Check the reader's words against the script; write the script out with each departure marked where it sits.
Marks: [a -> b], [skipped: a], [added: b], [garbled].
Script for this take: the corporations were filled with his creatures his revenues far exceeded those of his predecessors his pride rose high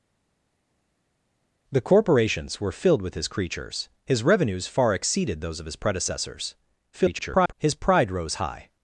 the corporations were filled with his creatures his revenues far exceeded those of his predecessors [garbled] his pride rose high